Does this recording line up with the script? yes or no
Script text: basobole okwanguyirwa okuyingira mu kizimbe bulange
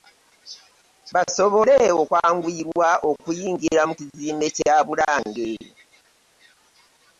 no